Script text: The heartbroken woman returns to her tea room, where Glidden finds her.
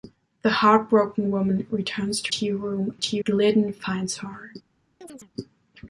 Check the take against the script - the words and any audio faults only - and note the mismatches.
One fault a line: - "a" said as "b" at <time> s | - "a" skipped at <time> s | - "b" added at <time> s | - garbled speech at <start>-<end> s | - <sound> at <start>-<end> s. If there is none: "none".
- "her" skipped at 2.3 s
- "where" said as "tea" at 3.0 s
- chirp at 5.0-5.3 s